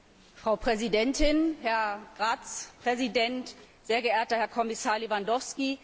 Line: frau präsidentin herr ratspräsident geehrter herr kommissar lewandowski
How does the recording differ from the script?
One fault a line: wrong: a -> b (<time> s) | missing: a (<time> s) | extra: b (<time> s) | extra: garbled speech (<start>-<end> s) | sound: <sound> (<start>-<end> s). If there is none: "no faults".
extra: sehr (3.8 s)